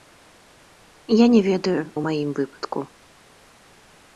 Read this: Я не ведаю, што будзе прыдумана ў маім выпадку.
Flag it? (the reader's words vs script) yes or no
yes